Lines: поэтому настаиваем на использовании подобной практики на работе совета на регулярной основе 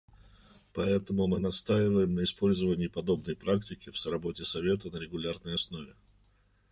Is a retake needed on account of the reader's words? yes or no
yes